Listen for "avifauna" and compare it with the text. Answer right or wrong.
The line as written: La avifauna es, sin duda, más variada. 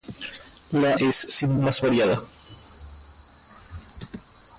wrong